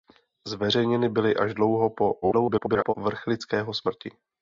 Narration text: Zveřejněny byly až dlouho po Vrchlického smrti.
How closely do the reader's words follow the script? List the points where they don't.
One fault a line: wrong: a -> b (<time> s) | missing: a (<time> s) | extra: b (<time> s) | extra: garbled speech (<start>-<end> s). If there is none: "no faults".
extra: garbled speech (2.2-2.9 s)